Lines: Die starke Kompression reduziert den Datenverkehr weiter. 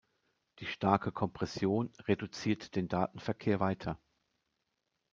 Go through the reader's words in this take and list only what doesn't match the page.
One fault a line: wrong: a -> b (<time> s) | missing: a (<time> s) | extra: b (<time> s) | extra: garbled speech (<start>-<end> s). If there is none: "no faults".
no faults